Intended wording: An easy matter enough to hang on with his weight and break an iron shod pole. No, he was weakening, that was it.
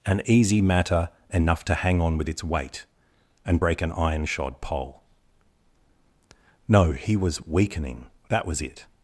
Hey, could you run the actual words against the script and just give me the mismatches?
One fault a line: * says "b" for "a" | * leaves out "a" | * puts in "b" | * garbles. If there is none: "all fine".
* says "its" for "his"